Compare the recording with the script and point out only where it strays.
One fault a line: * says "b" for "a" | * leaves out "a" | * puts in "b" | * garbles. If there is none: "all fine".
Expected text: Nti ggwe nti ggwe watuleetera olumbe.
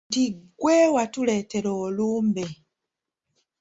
* leaves out "nti ggwe"